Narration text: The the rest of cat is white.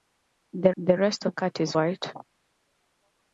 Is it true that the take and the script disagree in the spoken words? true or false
false